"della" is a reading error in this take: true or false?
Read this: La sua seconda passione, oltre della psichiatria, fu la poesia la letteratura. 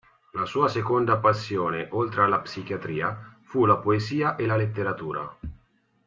true